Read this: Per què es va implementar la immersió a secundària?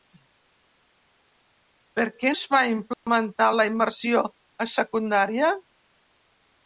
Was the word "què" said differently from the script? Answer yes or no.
no